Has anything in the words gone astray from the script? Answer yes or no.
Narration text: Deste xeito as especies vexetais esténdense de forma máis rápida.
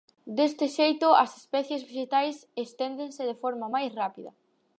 no